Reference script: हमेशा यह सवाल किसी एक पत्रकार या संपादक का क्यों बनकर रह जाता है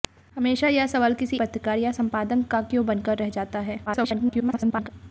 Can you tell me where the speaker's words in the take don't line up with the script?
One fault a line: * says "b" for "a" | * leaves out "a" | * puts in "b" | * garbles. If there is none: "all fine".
* leaves out "एक"
* garbles